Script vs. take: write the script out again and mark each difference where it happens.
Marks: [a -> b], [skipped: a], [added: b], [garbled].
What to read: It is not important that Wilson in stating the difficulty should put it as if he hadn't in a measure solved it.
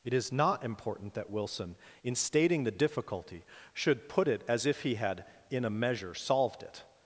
It is not important that Wilson in stating the difficulty should put it as if he [hadn't -> had] in a measure solved it.